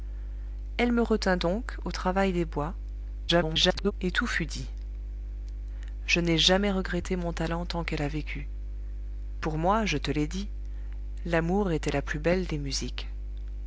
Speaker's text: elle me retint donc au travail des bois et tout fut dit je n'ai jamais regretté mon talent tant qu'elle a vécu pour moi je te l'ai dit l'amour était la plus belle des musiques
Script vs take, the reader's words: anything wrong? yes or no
yes